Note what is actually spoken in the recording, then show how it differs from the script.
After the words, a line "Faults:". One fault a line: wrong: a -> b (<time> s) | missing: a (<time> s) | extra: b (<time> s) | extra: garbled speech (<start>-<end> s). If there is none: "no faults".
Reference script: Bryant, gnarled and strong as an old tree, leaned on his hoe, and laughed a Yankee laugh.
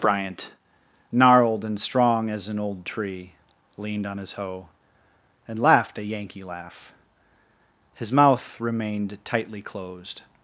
Bryant, gnarled and strong as an old tree, leaned on his hoe, and laughed a Yankee laugh. His mouth remained tightly closed
Faults:
extra: His mouth remained tightly closed (8.0 s)